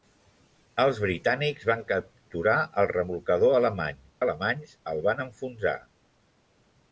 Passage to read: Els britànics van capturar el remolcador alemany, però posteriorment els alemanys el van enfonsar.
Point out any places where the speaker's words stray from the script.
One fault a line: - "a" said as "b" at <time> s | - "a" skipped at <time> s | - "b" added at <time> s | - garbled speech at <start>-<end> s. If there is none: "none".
- "però posteriorment els" skipped at 4.0 s